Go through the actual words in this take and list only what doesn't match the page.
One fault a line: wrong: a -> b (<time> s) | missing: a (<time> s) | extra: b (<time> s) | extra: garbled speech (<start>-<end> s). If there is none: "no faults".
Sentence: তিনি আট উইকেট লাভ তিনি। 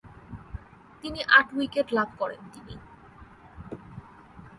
extra: করেন (2.2 s)